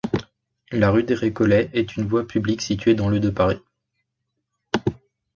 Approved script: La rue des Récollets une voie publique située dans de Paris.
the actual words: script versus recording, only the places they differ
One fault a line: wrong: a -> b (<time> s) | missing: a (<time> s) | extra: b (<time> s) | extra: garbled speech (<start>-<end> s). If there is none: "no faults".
extra: est (1.7 s)
extra: le (3.1 s)